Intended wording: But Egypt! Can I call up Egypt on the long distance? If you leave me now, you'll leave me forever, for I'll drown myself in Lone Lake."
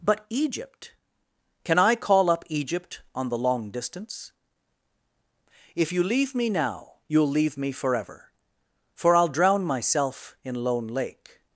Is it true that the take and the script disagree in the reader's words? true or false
false